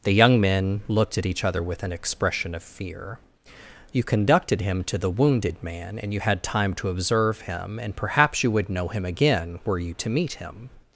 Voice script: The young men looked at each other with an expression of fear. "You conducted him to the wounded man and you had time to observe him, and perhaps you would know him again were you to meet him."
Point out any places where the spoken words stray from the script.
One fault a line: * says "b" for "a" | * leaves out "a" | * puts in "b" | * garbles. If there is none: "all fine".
all fine